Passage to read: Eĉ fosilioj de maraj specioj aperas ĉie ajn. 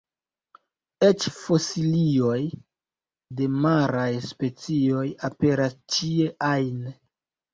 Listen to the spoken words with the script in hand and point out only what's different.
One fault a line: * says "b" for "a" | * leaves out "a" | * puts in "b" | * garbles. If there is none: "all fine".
all fine